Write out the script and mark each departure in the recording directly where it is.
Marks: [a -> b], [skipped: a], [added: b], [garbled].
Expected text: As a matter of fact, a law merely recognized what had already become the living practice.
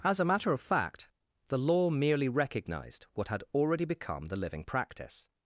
As a matter of fact, [a -> the] law merely recognized what had already become the living practice.